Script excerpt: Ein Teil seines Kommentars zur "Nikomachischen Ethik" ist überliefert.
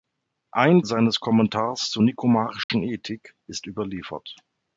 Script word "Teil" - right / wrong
wrong